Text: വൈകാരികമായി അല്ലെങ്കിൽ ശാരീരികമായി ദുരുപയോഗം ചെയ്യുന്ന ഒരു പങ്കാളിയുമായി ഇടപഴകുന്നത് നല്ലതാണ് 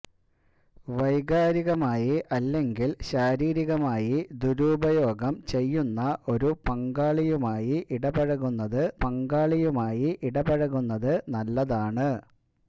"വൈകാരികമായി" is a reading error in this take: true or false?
false